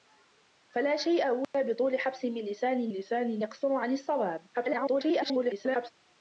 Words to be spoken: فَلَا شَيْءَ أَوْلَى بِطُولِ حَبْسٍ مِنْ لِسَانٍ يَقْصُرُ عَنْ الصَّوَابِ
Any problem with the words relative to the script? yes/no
yes